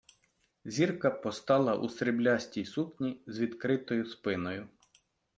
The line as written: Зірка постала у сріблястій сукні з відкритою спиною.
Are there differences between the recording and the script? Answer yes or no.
no